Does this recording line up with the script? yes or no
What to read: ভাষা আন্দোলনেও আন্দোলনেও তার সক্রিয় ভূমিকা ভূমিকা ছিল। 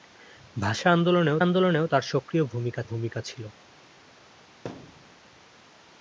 yes